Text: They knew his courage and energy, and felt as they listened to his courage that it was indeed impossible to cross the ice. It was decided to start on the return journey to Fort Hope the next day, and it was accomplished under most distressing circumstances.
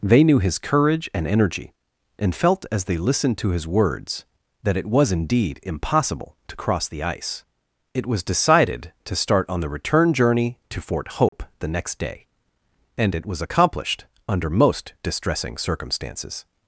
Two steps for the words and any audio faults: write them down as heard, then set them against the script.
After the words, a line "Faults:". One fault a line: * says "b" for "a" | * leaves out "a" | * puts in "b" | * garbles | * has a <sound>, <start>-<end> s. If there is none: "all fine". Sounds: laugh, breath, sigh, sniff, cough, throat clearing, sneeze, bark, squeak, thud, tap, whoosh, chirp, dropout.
They knew his courage and energy, and felt as they listened to his words that it was indeed impossible to cross the ice. It was decided to start on the return journey to Fort Hope the next day, and it was accomplished under most distressing circumstances.
Faults:
* says "words" for "courage"
* has a dropout, 11.3-11.3 s